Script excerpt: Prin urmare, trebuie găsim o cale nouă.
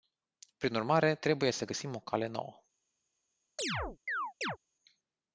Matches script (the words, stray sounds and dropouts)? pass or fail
fail